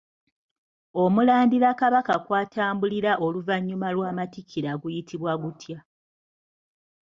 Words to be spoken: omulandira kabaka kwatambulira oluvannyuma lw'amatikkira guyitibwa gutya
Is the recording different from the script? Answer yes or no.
no